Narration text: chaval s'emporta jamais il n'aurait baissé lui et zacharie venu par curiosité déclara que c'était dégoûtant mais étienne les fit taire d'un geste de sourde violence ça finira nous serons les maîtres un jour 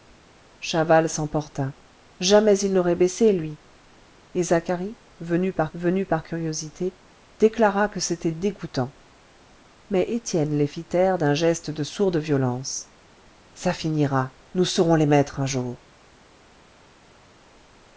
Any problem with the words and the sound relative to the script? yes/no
yes